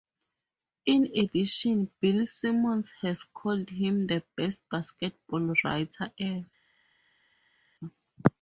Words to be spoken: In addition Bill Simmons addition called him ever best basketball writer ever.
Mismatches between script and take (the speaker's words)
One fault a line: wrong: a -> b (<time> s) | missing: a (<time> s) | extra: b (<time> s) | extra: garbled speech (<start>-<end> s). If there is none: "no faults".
wrong: addition -> has (3.0 s)
wrong: ever -> the (4.1 s)